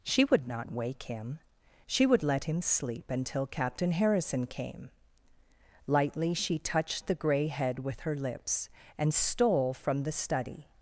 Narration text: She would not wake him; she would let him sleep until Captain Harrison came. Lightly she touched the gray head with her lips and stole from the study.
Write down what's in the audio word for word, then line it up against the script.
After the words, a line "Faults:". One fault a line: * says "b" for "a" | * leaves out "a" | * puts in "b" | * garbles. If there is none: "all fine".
She would not wake him; she would let him sleep until Captain Harrison came. Lightly she touched the gray head with her lips and stole from the study.
Faults:
all fine